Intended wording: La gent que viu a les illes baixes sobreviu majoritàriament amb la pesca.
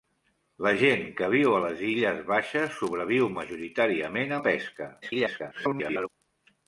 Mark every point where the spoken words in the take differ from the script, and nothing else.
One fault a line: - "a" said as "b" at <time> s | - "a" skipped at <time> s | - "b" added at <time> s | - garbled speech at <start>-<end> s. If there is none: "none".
- "amb" skipped at 4.3 s
- garbled speech at 5.0-6.1 s